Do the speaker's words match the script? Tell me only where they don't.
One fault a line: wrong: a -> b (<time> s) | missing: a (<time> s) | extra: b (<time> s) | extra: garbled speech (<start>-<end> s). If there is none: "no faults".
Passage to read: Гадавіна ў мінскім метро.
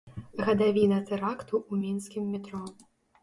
extra: тэракту (1.1 s)